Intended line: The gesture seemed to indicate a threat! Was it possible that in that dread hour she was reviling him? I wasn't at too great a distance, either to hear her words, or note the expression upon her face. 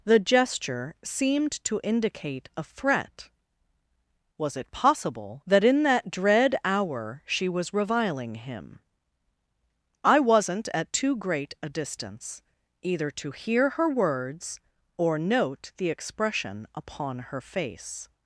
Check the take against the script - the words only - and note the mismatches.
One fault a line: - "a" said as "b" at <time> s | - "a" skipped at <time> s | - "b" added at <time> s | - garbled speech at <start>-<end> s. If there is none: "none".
none